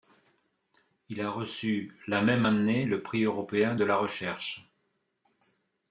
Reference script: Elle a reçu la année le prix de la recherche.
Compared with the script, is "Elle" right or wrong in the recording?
wrong